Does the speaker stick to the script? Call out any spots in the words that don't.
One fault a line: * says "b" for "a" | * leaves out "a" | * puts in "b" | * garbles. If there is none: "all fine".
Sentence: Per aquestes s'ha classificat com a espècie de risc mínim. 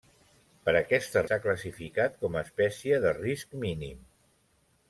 all fine